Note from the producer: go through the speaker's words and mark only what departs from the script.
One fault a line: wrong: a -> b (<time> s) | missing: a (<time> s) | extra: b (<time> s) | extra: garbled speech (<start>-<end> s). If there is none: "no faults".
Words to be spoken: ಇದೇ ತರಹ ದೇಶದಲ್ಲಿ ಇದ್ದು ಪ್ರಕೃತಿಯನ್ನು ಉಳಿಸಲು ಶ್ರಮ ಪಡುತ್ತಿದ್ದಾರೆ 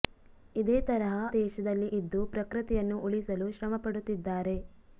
no faults